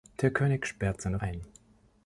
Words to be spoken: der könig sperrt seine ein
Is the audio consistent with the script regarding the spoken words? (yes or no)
yes